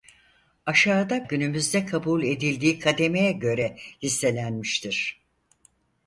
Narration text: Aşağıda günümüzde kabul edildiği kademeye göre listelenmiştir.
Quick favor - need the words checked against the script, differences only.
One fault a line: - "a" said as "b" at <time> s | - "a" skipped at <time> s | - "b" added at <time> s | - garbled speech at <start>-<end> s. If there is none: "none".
none